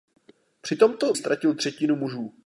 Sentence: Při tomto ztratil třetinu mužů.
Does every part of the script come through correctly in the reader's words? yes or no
yes